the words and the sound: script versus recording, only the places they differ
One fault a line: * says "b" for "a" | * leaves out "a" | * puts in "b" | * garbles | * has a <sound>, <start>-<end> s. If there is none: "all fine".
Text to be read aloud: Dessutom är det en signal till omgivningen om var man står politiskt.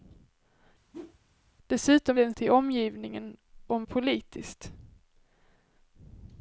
* has a whoosh, 0.9-1.2 s
* leaves out "är"
* leaves out "signal"
* leaves out "var man står"